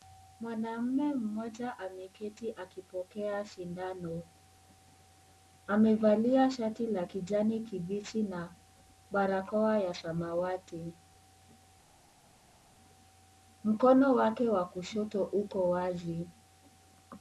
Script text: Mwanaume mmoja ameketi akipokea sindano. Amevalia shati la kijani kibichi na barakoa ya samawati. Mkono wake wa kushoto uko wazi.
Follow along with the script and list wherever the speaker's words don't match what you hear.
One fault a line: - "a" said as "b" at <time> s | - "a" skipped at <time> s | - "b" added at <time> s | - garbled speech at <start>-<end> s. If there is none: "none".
none